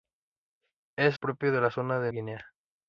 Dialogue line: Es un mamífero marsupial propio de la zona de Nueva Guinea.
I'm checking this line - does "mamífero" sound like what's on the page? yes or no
no